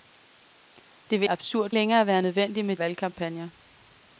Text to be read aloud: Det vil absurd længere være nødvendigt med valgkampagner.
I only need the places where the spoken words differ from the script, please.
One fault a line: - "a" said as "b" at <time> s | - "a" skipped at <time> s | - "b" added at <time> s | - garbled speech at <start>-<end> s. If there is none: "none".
none